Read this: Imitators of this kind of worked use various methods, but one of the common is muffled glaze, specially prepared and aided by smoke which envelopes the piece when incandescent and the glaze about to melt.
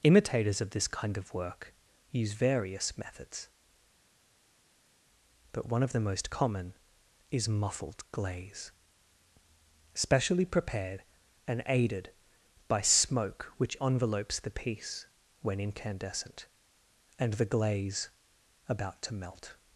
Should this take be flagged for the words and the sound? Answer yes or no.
yes